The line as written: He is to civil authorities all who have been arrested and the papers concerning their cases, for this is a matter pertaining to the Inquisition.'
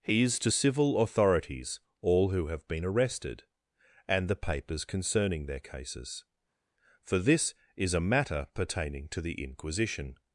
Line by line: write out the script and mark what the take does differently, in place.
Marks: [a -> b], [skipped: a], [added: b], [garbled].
He is to civil authorities all who have been arrested and the papers concerning their cases, for this is a matter pertaining to the Inquisition.'